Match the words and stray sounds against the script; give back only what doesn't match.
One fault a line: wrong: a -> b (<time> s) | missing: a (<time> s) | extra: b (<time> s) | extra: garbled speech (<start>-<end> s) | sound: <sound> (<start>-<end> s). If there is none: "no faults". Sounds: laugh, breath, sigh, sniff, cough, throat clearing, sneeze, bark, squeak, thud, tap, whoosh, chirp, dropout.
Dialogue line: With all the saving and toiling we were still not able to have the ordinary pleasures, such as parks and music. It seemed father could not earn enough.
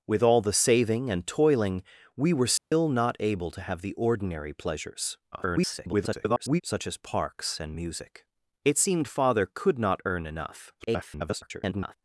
sound: dropout (2.6-2.7 s)
extra: garbled speech (5.3-6.6 s)
extra: garbled speech (10.8-11.9 s)